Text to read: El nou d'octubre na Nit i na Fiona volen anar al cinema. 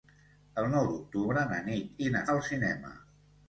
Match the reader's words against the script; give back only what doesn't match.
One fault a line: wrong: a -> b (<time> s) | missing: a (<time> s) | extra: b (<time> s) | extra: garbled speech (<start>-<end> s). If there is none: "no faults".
missing: Fiona volen anar (2.2 s)